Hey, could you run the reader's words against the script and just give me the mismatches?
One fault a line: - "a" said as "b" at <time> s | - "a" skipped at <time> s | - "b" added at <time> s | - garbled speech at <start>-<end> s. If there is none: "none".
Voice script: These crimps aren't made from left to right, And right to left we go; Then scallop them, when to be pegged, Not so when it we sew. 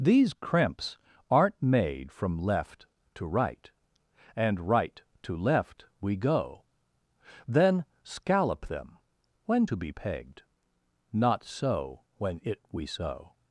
none